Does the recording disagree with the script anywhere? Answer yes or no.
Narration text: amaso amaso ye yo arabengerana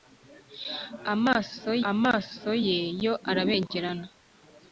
no